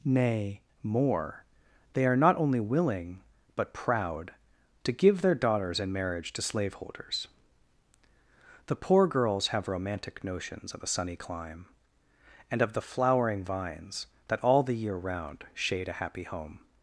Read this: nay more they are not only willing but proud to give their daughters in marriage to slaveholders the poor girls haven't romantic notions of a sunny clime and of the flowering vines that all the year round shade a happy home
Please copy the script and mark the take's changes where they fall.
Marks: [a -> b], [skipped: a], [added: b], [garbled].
nay more they are not only willing but proud to give their daughters in marriage to slaveholders the poor girls [haven't -> have] romantic notions of a sunny clime and of the flowering vines that all the year round shade a happy home